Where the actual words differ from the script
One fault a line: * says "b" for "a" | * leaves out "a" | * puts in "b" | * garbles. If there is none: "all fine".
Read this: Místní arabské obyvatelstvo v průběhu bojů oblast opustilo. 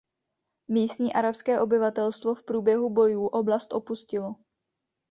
all fine